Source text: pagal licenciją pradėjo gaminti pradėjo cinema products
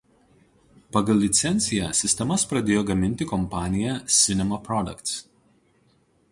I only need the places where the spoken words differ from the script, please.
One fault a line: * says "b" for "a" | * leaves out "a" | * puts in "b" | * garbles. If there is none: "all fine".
* puts in "sistemas"
* says "kompanija" for "pradėjo"